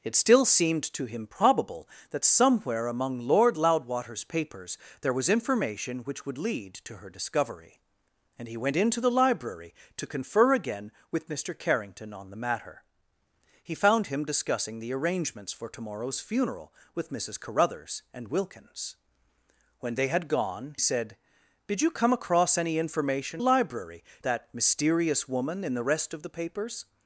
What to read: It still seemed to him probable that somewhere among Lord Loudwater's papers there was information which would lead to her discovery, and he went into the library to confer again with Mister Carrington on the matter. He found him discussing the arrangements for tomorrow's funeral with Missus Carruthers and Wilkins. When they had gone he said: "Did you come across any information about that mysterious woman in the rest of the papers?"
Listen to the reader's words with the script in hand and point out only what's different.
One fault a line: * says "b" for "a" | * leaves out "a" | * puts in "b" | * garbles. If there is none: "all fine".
* leaves out "he"
* says "library" for "about"